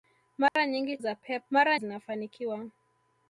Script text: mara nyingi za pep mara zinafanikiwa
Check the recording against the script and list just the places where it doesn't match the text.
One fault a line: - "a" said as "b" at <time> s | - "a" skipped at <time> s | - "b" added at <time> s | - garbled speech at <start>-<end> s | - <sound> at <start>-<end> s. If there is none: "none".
- dropout at 0.5-0.6 s